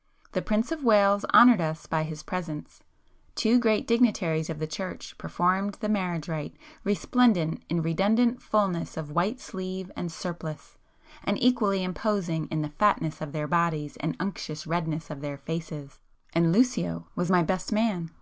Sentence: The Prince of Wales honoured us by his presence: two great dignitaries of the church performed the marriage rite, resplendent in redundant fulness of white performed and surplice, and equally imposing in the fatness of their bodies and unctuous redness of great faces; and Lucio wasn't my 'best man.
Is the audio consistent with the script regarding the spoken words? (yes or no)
no